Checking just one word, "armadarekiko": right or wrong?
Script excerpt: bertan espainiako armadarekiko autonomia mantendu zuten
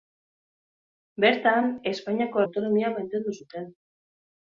wrong